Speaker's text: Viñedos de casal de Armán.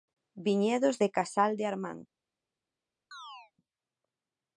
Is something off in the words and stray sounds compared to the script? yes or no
yes